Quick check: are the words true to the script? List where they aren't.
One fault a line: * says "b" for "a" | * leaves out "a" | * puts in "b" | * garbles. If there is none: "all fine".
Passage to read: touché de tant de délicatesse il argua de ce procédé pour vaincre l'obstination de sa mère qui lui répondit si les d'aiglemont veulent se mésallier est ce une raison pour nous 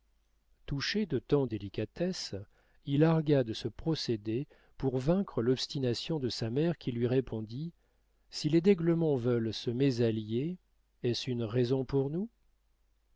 * leaves out "de"